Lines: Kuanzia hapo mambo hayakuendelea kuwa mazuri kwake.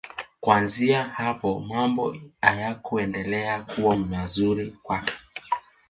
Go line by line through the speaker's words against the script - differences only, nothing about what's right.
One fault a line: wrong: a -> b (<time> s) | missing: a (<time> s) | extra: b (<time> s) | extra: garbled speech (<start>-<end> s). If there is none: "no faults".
no faults